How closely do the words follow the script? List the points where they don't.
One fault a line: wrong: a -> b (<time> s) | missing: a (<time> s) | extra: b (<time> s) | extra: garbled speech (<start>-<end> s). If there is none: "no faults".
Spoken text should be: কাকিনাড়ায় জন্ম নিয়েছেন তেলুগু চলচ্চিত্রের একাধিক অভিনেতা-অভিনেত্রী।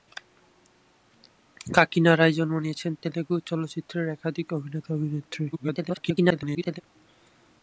extra: garbled speech (5.5-6.8 s)